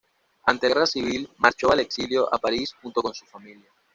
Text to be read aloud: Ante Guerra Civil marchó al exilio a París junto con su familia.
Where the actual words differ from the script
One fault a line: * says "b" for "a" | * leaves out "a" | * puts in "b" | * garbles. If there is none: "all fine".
all fine